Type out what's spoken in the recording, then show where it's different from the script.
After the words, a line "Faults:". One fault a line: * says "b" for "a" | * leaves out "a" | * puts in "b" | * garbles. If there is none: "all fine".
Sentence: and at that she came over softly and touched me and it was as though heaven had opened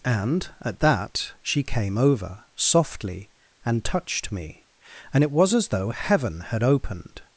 and at that she came over softly and touched me and it was as though heaven had opened
Faults:
all fine